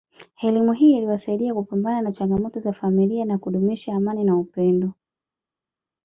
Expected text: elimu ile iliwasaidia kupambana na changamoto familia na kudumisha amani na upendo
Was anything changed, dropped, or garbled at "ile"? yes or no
yes